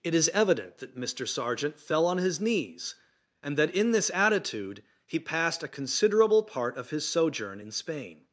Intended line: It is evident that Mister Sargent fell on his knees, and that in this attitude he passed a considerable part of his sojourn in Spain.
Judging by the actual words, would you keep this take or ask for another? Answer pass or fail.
pass